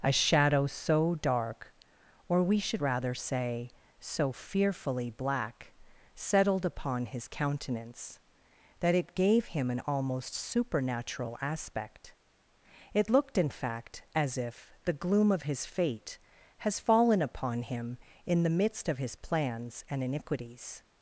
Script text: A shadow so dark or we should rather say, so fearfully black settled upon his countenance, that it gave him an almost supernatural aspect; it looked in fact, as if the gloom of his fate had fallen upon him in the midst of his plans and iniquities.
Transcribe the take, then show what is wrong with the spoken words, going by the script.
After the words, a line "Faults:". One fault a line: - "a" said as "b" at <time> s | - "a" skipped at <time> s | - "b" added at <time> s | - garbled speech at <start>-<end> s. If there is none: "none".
A shadow so dark or we should rather say, so fearfully black settled upon his countenance, that it gave him an almost supernatural aspect; it looked in fact, as if the gloom of his fate has fallen upon him in the midst of his plans and iniquities.
Faults:
- "had" said as "has" at 16.6 s